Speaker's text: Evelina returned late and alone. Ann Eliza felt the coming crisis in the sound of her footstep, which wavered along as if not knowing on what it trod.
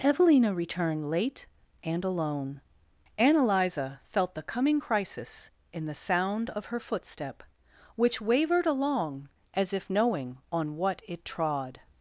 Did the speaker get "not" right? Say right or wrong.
wrong